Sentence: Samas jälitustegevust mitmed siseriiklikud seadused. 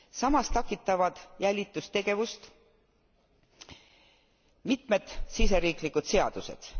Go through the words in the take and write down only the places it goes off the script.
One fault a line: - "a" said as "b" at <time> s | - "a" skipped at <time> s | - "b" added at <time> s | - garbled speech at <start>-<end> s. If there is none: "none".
- "takistavad" added at 0.5 s